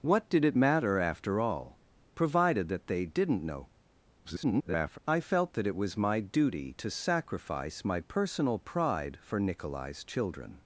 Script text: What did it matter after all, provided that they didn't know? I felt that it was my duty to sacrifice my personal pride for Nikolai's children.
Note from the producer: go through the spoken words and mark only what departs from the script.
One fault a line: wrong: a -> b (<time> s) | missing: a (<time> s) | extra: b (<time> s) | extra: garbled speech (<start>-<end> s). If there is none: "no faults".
extra: garbled speech (4.2-5.0 s)